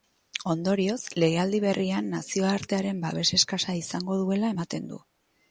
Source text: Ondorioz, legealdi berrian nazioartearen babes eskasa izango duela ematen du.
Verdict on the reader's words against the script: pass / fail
pass